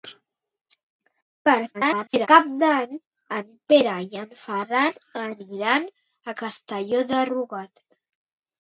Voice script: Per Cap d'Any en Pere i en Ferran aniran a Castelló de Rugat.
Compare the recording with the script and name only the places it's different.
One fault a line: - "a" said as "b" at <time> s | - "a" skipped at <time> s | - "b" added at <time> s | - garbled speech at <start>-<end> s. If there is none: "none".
- garbled speech at 1.7-2.3 s